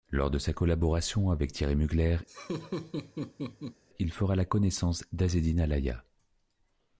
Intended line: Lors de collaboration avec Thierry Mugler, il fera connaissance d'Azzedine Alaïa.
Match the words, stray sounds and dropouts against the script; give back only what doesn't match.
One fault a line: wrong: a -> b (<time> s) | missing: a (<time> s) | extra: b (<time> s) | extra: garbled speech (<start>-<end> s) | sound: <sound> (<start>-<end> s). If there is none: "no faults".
extra: sa (0.4 s)
sound: laugh (2.3-3.8 s)
extra: la (4.3 s)